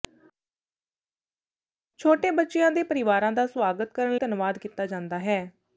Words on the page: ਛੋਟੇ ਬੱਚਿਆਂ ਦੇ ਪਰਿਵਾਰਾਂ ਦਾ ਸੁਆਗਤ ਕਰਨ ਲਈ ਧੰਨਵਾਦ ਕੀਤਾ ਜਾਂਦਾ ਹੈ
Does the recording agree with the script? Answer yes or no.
no